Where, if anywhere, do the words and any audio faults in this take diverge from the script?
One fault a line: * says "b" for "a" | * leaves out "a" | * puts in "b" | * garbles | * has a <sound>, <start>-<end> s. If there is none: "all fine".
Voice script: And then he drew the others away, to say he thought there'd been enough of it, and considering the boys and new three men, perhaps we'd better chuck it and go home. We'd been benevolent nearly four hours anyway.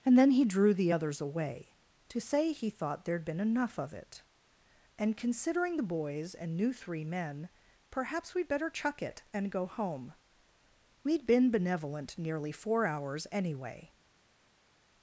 all fine